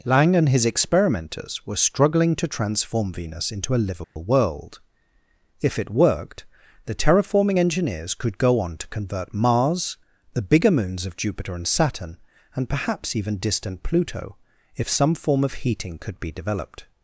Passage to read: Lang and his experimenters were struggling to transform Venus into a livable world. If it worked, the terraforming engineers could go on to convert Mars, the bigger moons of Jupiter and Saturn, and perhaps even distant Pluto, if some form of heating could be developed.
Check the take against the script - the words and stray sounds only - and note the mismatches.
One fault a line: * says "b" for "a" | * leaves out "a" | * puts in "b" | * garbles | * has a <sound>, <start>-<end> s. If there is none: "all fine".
* has a dropout, 4.0-4.2 s